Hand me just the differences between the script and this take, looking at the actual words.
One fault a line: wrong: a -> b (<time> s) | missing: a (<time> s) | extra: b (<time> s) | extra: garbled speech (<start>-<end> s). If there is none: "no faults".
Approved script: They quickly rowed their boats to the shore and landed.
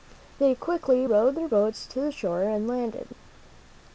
no faults